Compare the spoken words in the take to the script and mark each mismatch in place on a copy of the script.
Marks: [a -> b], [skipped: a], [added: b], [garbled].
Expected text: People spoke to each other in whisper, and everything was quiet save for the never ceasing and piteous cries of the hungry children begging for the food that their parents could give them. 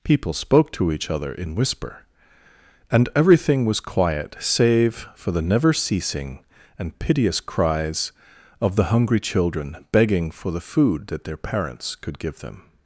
People spoke to each other in whisper, and everything was quiet save for the never ceasing and piteous cries of the hungry children begging for the food that their parents could give them.